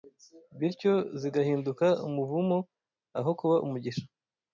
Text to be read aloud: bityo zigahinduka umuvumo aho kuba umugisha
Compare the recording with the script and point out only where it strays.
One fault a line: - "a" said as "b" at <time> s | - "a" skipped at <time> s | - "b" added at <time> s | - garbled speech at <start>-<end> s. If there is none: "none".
none